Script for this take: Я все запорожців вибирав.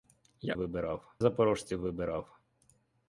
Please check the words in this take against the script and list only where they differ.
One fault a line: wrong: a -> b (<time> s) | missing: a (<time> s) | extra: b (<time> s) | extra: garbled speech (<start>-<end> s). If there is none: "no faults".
wrong: все -> вибирав (0.5 s)